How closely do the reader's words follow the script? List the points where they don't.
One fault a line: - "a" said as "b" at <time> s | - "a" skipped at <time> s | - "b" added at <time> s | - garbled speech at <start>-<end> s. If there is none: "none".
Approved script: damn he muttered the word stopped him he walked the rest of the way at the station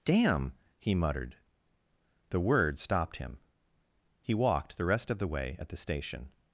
none